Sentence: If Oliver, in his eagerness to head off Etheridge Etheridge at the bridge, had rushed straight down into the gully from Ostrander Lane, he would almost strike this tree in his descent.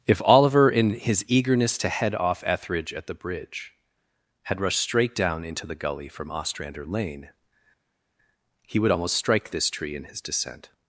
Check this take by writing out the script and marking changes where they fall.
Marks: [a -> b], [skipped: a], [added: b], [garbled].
If Oliver, in his eagerness to head off Etheridge [skipped: Etheridge] at the bridge, had rushed straight down into the gully from Ostrander Lane, he would almost strike this tree in his descent.